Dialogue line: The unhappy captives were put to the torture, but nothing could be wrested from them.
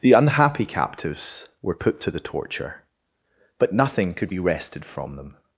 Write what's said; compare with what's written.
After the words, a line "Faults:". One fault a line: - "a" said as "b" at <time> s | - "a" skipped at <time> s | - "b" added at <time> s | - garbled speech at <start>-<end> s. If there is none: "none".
The unhappy captives were put to the torture, but nothing could be wrested from them.
Faults:
none